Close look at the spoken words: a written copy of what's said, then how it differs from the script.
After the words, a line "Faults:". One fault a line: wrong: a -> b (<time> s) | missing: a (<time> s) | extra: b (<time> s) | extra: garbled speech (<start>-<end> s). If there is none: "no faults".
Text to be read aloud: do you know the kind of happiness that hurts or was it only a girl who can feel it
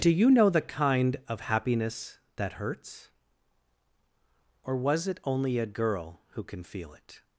do you know the kind of happiness that hurts or was it only a girl who can feel it
Faults:
no faults